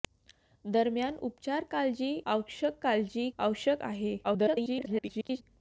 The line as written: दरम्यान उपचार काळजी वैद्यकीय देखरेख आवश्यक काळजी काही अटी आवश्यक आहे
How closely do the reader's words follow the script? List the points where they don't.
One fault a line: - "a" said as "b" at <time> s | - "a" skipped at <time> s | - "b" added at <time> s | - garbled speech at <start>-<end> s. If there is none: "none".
- "वैद्यकीय देखरेख" skipped at 2.1 s
- "काही अटी" skipped at 3.3 s
- garbled speech at 4.2-5.4 s